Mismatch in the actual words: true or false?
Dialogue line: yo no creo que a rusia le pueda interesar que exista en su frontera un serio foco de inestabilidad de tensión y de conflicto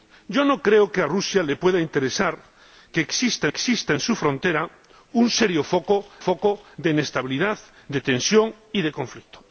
true